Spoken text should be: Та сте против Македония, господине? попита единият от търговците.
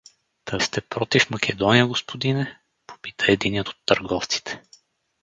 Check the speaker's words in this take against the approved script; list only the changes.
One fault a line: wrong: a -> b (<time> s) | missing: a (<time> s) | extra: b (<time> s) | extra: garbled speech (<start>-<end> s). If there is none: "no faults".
no faults